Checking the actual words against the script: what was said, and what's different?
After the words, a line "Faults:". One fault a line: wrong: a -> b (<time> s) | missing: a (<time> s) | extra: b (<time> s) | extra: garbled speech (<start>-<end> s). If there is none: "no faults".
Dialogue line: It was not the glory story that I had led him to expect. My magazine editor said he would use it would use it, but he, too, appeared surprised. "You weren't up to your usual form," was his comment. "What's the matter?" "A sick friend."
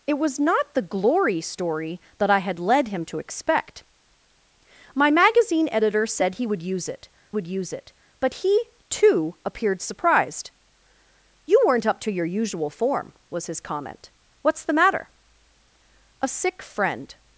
It was not the glory story that I had led him to expect. My magazine editor said he would use it would use it, but he, too, appeared surprised. "You weren't up to your usual form," was his comment. "What's the matter?" "A sick friend."
Faults:
no faults